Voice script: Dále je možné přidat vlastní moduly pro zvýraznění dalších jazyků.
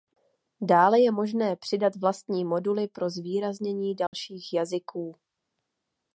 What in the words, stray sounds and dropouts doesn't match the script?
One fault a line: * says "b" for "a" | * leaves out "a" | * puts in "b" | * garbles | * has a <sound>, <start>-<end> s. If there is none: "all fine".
* has a dropout, 4.1-4.1 s